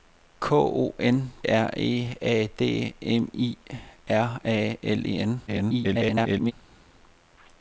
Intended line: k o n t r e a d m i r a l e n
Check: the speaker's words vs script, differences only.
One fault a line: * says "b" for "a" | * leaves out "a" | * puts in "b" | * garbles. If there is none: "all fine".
* leaves out "t"
* garbles